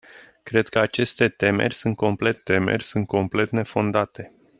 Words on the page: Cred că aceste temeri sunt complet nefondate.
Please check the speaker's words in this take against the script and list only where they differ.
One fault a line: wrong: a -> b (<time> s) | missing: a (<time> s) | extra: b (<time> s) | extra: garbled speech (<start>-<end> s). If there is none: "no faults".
extra: temeri sunt complet (2.3 s)